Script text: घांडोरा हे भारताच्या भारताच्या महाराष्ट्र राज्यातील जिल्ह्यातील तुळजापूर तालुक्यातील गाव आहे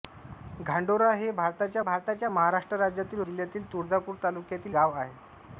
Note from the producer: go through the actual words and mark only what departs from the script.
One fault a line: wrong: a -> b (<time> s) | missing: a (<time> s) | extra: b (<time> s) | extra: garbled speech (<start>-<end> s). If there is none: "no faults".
no faults